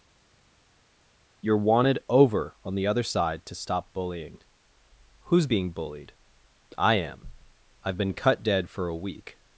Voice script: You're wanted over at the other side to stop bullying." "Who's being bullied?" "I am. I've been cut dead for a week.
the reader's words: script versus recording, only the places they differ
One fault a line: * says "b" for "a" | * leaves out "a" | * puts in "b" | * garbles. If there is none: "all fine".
* says "on" for "at"